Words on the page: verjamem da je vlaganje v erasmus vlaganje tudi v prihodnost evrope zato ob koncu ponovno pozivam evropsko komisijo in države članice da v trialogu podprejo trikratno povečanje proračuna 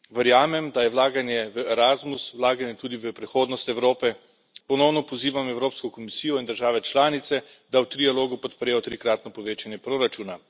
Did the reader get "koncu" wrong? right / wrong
wrong